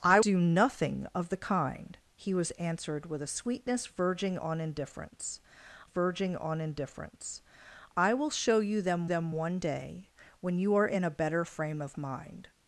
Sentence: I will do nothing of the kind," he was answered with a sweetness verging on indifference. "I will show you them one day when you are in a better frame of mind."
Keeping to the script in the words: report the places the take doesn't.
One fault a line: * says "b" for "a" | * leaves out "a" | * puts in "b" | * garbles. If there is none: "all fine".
* leaves out "will"
* puts in "verging on indifference"
* puts in "them"